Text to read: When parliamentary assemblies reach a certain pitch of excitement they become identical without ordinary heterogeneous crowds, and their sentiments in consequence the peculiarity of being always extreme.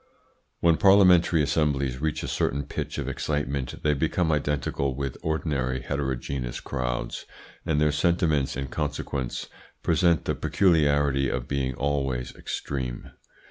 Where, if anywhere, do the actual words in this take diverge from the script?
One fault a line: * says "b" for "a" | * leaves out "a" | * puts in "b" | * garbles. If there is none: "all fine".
* says "with" for "without"
* puts in "present"